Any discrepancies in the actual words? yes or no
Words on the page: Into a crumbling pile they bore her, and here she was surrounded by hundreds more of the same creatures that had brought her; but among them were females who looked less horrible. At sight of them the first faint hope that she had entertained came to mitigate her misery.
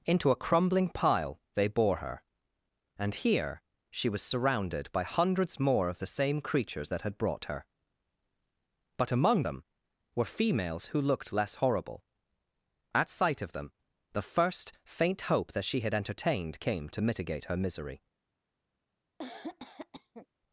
no